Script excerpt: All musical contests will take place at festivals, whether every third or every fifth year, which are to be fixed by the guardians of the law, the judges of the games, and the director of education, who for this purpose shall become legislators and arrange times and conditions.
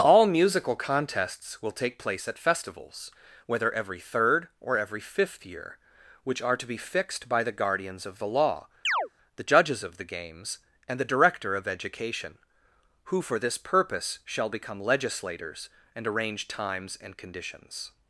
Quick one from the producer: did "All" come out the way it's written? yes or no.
yes